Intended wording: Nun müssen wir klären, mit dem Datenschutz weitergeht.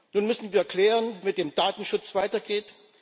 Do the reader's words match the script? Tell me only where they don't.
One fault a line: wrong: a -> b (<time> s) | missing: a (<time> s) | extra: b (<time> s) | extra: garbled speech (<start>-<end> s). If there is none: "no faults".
no faults